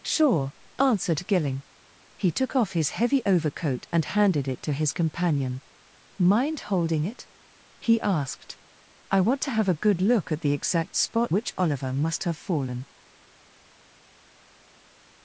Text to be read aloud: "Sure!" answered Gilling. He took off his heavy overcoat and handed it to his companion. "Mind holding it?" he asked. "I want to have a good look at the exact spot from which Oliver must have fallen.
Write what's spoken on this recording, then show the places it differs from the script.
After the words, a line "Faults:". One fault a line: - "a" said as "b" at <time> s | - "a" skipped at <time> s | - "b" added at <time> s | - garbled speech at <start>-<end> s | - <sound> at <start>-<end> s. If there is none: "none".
"Sure!" answered Gilling. He took off his heavy overcoat and handed it to his companion. "Mind holding it?" he asked. "I want to have a good look at the exact spot which Oliver must have fallen.
Faults:
- "from" skipped at 11.3 s